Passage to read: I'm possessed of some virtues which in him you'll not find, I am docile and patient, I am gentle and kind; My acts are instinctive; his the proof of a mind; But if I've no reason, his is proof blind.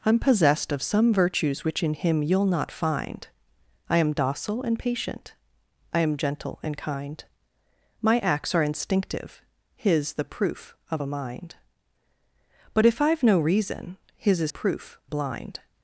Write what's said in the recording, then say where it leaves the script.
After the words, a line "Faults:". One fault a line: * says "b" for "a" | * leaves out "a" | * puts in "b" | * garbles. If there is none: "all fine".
I'm possessed of some virtues which in him you'll not find, I am docile and patient, I am gentle and kind; My acts are instinctive; his the proof of a mind; But if I've no reason, his is proof blind.
Faults:
all fine